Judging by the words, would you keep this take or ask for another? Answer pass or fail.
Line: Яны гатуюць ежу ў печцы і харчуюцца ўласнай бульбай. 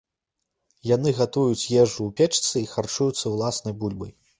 pass